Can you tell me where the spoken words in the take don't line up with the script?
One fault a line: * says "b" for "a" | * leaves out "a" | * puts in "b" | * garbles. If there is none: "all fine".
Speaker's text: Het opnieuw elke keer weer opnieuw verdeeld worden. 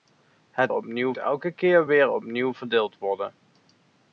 all fine